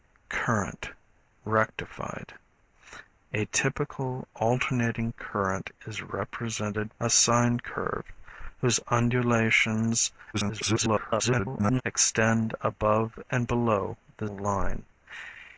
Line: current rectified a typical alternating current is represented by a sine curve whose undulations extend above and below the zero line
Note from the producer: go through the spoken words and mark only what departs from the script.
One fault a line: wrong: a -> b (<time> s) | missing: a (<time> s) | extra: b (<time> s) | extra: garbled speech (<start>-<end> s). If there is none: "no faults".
missing: by (7.0 s)
extra: garbled speech (10.3-11.8 s)
missing: zero (14.3 s)